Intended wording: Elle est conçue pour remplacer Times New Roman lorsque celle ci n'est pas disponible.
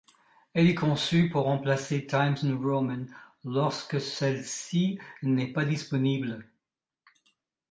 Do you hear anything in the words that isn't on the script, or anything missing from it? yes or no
no